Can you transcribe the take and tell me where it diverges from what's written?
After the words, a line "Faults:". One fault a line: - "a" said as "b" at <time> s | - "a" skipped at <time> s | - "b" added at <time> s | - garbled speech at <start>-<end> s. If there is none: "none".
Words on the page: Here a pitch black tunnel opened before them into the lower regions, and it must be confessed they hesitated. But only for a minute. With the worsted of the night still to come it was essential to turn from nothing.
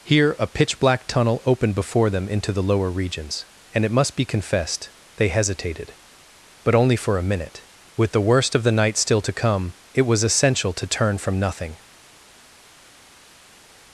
Here a pitch black tunnel opened before them into the lower regions, and it must be confessed they hesitated. But only for a minute. With the worst of the night still to come it was essential to turn from nothing.
Faults:
- "worsted" said as "worst" at 8.2 s